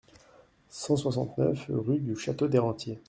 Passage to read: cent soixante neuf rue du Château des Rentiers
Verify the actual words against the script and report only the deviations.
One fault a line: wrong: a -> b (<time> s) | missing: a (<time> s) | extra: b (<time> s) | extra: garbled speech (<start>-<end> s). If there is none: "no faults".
no faults